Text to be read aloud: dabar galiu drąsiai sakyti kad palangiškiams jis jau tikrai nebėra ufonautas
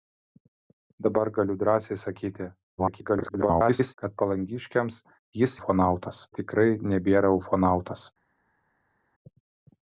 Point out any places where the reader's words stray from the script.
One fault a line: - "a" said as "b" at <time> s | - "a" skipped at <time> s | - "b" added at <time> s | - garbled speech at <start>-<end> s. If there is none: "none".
- garbled speech at 2.8-3.9 s
- "jau" said as "ufonautas" at 5.6 s